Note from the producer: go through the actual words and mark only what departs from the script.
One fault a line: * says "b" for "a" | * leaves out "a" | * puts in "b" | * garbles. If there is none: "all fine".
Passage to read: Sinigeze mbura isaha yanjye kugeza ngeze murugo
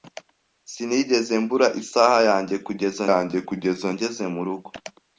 * puts in "yanjye kugeza"